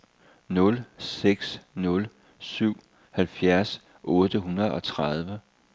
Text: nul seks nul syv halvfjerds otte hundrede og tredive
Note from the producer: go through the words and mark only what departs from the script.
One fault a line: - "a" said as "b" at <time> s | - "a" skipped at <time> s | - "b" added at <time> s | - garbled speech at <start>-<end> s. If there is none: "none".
none